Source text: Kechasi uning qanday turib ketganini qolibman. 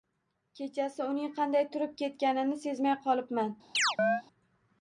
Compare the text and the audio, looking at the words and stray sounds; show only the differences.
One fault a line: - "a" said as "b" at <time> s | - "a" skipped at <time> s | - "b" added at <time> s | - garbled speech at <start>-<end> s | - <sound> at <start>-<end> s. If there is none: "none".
- "sezmay" added at 2.6 s
- chirp at 3.7-4.2 s